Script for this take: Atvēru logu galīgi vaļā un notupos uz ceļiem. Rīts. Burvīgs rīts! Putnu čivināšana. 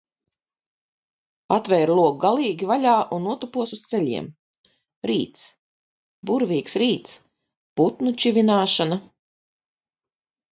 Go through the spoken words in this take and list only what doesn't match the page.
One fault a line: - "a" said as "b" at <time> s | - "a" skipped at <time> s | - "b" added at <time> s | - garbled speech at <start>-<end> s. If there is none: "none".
none